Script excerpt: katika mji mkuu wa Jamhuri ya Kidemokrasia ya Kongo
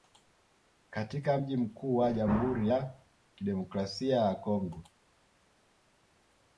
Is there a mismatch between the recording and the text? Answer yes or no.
no